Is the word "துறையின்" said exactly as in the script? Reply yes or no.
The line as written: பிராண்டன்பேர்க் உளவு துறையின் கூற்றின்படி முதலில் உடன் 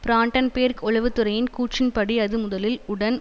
yes